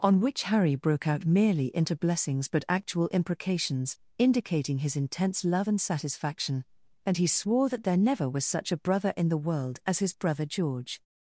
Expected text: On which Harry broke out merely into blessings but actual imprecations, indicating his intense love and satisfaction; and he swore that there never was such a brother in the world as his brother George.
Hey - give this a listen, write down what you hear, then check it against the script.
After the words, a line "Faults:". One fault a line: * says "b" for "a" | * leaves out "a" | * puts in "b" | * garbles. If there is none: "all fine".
On which Harry broke out merely into blessings but actual imprecations, indicating his intense love and satisfaction; and he swore that there never was such a brother in the world as his brother George.
Faults:
all fine